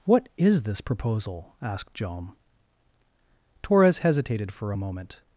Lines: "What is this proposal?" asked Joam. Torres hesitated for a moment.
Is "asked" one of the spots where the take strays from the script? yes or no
no